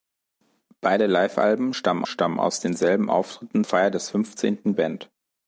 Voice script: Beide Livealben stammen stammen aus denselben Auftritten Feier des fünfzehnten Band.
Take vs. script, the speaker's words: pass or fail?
pass